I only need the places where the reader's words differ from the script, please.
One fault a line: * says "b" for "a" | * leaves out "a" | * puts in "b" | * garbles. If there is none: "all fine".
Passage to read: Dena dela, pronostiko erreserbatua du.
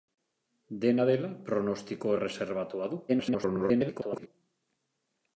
* garbles